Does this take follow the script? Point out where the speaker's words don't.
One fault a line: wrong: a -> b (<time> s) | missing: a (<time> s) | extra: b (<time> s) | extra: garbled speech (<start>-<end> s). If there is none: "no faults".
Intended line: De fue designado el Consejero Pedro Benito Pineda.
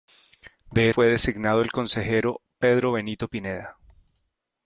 no faults